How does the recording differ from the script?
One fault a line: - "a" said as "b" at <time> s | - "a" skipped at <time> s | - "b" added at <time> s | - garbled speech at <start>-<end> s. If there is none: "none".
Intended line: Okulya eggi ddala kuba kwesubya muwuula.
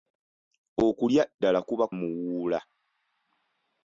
- "eggi" skipped at 1.2 s
- "kwesubya" skipped at 1.9 s